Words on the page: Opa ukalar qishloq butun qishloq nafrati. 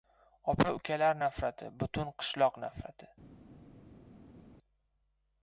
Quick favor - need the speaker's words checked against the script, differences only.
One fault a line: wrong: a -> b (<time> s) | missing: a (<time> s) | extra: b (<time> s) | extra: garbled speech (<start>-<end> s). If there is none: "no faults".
wrong: qishloq -> nafrati (1.2 s)